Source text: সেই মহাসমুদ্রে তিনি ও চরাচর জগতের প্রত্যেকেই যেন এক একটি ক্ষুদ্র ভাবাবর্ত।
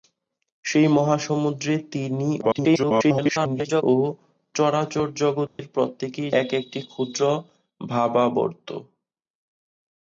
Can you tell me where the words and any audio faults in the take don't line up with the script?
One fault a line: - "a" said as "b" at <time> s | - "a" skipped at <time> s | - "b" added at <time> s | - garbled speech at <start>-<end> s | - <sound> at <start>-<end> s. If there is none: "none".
- garbled speech at 2.4-3.8 s
- dropout at 5.5-5.6 s
- "যেন" skipped at 6.3 s